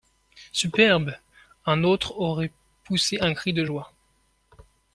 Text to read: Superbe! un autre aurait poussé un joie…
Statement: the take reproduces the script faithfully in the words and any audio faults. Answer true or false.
false